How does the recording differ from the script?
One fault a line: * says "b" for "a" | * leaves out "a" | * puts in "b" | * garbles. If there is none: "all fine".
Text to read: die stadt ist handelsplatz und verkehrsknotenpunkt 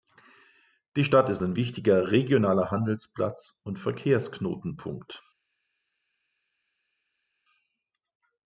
* puts in "ein wichtiger regionaler"